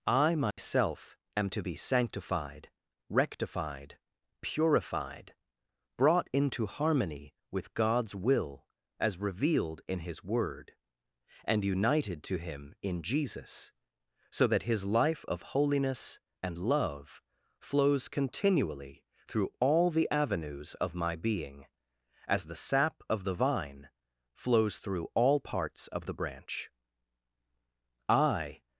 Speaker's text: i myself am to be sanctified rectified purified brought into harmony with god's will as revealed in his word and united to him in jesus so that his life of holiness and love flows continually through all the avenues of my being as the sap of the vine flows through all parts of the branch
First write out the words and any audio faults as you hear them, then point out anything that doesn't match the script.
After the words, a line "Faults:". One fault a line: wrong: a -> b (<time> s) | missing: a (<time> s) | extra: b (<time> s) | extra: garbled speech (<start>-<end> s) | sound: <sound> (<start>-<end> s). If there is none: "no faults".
i myself am to be sanctified rectified purified brought into harmony with god's will as revealed in his word and united to him in jesus so that his life of holiness and love flows continually through all the avenues of my being as the sap of the vine flows through all parts of the branch i
Faults:
sound: dropout (0.5-0.6 s)
extra: i (28.1 s)